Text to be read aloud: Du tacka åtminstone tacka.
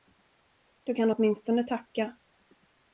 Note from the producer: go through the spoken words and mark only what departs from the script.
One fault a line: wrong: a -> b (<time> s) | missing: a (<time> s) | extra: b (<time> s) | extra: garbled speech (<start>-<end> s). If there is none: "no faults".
wrong: tacka -> kan (0.9 s)